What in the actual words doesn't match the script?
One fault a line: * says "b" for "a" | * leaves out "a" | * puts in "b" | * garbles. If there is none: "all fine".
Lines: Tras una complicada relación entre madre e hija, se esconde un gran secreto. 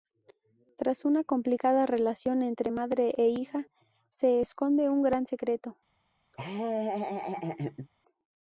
all fine